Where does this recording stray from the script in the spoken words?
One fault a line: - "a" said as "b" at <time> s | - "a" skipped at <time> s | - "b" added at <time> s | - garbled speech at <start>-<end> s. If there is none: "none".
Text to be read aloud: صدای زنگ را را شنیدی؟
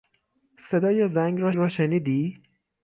none